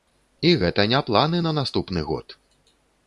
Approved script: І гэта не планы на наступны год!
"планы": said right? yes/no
yes